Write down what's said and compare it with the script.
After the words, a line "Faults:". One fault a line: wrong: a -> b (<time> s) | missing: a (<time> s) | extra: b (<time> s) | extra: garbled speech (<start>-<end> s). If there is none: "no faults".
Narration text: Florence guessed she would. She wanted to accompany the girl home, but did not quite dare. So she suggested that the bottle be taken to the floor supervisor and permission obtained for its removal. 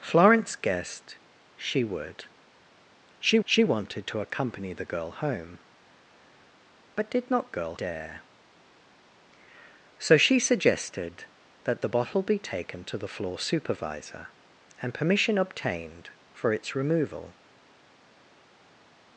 Florence guessed she would. She she wanted to accompany the girl home, but did not girl dare. So she suggested that the bottle be taken to the floor supervisor and permission obtained for its removal.
Faults:
extra: she (3.4 s)
wrong: quite -> girl (7.5 s)